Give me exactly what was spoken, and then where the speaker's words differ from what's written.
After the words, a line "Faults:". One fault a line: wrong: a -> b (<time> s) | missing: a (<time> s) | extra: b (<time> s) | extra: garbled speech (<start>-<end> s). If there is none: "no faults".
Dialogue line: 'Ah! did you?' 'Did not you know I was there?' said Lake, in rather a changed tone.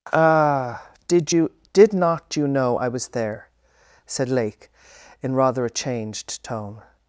'Ah! did you?' 'Did not you know I was there?' said Lake, in rather a changed tone.
Faults:
no faults